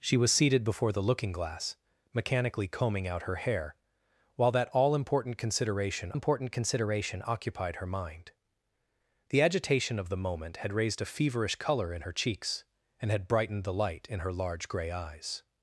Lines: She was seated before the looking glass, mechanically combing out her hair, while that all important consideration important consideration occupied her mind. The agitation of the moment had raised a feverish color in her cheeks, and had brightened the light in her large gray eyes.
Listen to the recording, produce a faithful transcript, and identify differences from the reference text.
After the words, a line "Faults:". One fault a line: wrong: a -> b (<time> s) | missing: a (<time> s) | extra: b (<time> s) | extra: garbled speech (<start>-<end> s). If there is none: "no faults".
She was seated before the looking glass, mechanically combing out her hair, while that all important consideration important consideration occupied her mind. The agitation of the moment had raised a feverish color in her cheeks, and had brightened the light in her large gray eyes.
Faults:
no faults